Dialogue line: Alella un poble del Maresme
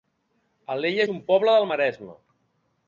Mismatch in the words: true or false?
false